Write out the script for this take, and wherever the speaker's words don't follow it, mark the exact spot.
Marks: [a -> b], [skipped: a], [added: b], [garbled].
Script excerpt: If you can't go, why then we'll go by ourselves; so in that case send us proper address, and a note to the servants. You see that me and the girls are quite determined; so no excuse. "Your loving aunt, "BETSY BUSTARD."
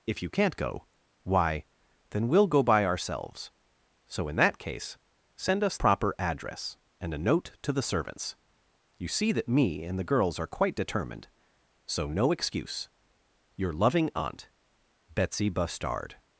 If you can't go, why then we'll go by ourselves; so in that case send us proper address, and a note to the servants. You see that me and the girls are quite determined; so no excuse. "Your loving aunt, "BETSY BUSTARD."